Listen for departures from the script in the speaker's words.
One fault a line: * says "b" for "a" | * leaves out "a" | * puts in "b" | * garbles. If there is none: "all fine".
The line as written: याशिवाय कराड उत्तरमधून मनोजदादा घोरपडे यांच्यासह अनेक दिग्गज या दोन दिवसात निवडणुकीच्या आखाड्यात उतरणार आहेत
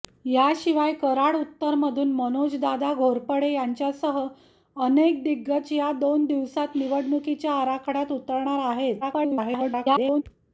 * garbles